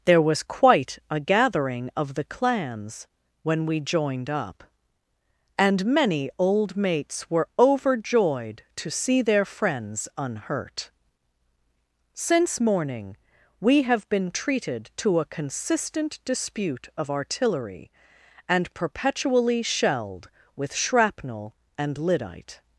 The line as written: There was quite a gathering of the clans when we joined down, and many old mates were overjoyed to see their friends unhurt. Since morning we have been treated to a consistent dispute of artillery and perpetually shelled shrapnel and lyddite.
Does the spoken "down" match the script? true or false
false